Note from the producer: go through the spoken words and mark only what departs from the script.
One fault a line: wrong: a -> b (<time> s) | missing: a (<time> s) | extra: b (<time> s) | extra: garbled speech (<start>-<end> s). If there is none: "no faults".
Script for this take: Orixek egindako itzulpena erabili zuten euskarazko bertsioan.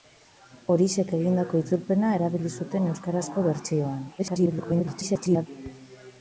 extra: garbled speech (4.2-5.5 s)